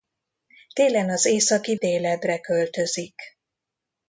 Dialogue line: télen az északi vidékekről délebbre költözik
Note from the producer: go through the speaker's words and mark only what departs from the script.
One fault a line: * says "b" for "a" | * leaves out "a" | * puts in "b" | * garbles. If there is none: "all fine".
* leaves out "vidékekről"